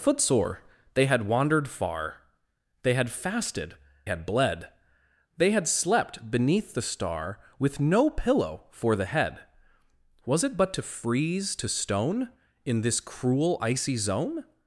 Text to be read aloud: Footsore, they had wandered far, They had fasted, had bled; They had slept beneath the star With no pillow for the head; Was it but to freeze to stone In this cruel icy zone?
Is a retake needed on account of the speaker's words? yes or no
no